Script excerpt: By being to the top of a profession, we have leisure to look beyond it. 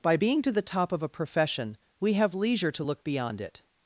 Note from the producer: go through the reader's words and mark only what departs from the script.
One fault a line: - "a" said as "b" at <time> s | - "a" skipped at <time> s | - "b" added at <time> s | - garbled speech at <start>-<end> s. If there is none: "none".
none